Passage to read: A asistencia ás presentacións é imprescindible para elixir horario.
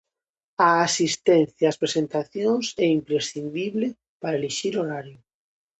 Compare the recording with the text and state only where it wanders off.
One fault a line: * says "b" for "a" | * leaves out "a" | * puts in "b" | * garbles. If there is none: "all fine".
all fine